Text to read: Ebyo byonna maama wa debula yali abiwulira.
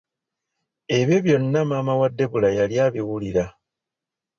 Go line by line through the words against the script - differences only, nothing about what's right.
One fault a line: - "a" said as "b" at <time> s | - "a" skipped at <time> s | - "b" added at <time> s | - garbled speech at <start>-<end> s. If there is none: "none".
none